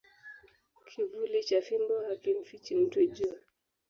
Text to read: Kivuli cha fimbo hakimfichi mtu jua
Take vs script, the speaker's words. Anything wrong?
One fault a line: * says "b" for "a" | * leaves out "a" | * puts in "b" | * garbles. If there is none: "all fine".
all fine